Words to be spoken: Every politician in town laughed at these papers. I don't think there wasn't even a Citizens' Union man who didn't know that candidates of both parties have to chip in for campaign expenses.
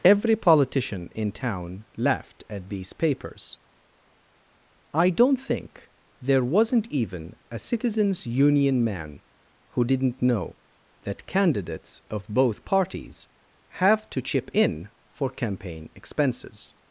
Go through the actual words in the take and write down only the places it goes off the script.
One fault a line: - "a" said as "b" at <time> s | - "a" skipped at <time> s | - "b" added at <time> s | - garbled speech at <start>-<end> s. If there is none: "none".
none